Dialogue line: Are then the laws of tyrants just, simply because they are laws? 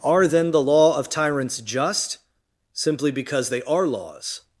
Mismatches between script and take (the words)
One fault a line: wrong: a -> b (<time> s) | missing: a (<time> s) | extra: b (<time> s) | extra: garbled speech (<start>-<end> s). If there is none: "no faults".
wrong: laws -> law (0.6 s)